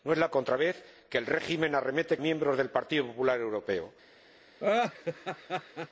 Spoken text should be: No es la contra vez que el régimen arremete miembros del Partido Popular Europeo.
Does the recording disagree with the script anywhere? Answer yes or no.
no